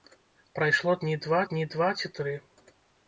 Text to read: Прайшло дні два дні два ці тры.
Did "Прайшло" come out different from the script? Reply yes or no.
no